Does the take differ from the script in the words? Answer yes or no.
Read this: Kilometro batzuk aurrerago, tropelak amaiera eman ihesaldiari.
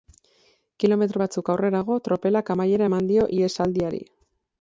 yes